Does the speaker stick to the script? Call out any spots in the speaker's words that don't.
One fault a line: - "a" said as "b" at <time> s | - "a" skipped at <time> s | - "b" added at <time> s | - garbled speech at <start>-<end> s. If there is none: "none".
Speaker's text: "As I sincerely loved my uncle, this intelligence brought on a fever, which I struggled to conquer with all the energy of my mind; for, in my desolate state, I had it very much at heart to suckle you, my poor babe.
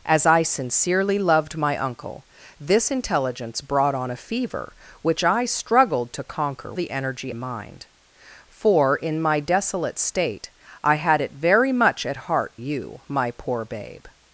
- "with all" skipped at 6.7 s
- "of my" skipped at 7.3 s
- "to suckle" skipped at 12.6 s